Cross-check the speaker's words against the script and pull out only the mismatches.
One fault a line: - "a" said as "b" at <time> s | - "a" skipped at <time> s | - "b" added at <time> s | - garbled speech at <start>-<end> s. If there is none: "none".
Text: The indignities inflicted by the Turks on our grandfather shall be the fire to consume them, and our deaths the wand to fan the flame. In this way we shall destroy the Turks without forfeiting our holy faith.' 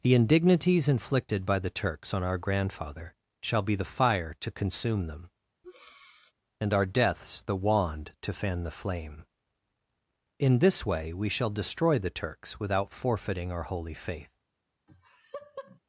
none